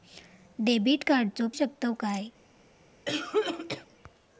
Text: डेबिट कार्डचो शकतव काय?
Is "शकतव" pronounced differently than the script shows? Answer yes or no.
no